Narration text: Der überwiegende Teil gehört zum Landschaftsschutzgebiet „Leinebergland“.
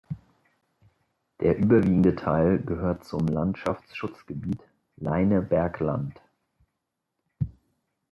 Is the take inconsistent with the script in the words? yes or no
no